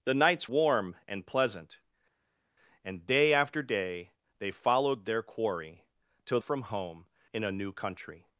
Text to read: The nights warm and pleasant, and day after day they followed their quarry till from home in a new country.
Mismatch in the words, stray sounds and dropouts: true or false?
false